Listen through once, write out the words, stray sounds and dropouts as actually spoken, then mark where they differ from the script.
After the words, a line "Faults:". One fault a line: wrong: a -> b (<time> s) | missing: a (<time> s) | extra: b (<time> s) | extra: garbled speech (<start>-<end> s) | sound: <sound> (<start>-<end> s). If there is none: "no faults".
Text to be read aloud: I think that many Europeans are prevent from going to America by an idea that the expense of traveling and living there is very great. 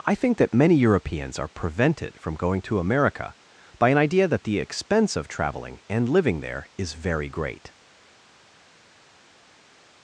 I think that many Europeans are prevented from going to America by an idea that the expense of traveling and living there is very great.
Faults:
wrong: prevent -> prevented (1.5 s)